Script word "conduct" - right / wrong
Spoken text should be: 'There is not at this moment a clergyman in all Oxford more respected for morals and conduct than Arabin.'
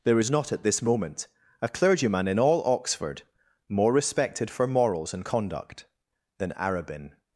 right